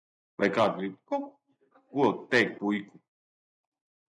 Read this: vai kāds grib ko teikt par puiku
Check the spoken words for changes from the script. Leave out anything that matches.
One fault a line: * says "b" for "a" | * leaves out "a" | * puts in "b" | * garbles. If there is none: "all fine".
* leaves out "par"